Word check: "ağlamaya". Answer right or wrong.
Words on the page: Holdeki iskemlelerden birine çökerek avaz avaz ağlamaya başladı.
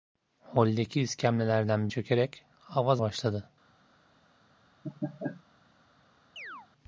wrong